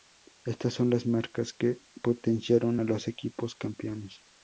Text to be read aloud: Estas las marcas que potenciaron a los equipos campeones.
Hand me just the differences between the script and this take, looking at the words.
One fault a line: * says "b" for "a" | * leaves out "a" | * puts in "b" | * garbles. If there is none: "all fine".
* puts in "son"